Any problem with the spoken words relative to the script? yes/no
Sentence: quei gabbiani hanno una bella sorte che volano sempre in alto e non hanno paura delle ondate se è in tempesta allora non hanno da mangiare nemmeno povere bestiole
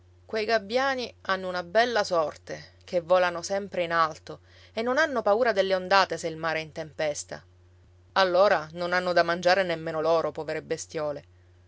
yes